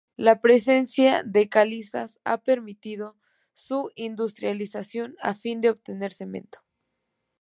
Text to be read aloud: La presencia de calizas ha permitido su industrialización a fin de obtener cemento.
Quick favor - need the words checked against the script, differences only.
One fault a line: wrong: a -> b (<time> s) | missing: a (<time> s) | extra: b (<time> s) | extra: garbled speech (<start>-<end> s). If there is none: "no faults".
no faults